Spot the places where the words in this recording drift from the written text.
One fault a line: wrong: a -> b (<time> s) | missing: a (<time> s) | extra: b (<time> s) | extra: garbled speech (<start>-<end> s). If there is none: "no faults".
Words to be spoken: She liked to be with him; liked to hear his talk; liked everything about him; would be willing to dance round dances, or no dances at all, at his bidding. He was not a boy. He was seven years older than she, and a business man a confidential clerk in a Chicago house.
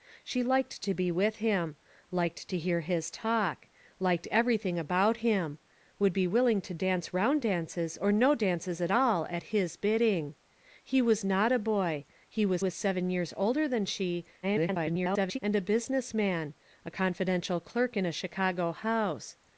extra: was (12.6 s)
extra: garbled speech (14.4-15.4 s)